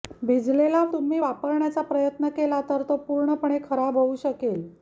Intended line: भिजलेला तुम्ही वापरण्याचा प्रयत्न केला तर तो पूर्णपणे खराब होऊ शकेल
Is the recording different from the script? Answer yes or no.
no